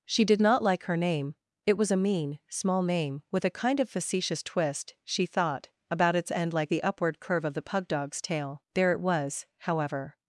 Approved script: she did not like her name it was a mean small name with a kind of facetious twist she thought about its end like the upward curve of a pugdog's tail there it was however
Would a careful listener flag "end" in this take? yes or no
no